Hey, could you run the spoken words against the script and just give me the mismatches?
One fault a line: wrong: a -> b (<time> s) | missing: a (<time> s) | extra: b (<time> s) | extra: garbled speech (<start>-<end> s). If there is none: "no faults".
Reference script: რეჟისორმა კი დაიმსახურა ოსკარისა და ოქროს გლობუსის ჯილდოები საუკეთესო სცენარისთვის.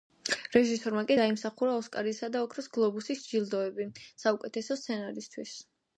no faults